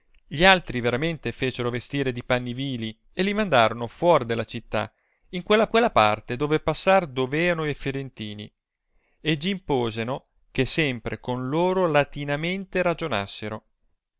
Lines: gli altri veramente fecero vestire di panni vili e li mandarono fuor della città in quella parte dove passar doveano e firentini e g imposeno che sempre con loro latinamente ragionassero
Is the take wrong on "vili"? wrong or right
right